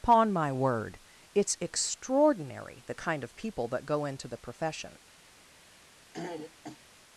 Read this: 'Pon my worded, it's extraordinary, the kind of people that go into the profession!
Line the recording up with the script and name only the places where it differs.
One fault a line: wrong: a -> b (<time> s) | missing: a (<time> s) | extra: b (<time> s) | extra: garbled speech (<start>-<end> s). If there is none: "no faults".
wrong: worded -> word (0.5 s)